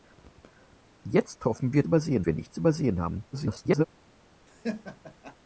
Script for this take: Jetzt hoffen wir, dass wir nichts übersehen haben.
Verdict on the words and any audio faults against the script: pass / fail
fail